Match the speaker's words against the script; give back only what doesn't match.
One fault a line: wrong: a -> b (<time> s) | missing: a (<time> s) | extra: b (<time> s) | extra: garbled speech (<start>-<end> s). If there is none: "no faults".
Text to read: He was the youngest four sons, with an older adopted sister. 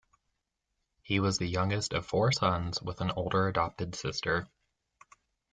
extra: of (1.9 s)